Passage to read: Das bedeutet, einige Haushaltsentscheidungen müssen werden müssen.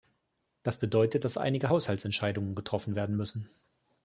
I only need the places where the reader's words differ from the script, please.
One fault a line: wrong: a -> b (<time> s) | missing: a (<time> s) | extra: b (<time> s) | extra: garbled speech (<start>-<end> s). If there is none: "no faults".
extra: dass (1.2 s)
wrong: müssen -> getroffen (2.5 s)